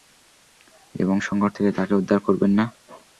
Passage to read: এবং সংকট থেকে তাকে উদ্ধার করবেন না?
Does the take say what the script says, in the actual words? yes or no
yes